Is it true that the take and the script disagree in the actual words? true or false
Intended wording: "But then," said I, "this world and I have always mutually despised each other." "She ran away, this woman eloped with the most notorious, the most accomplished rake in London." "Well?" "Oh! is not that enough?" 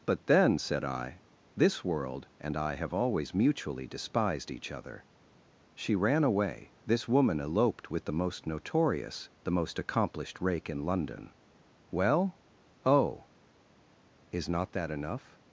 false